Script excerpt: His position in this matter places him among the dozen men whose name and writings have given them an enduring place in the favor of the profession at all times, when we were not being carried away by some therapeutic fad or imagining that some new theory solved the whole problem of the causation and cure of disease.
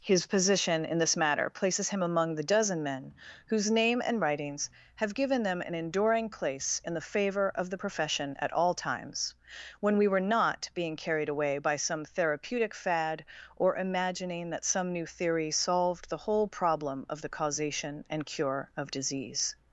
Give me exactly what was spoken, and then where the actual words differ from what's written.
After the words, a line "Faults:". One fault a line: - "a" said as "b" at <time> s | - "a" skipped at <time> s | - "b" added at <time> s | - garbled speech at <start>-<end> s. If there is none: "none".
His position in this matter places him among the dozen men whose name and writings have given them an enduring place in the favor of the profession at all times, when we were not being carried away by some therapeutic fad or imagining that some new theory solved the whole problem of the causation and cure of disease.
Faults:
none